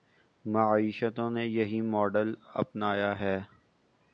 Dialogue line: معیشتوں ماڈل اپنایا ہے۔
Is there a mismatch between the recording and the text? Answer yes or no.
yes